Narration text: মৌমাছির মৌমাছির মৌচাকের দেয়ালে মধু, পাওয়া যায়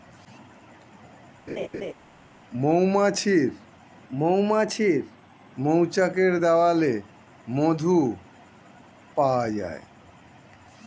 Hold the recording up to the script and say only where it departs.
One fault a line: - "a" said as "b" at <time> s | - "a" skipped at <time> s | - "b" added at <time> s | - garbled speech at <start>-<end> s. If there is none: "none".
none